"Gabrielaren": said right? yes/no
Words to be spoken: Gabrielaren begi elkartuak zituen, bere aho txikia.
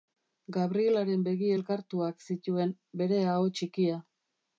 yes